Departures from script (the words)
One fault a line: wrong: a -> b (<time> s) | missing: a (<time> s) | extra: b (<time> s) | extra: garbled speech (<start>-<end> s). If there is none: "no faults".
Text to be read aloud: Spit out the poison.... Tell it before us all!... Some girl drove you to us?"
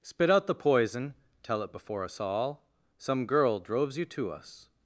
wrong: drove -> droves (3.6 s)